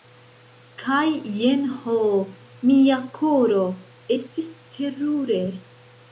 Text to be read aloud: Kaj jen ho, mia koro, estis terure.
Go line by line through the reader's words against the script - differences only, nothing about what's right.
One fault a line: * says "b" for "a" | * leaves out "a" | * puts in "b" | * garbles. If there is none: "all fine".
all fine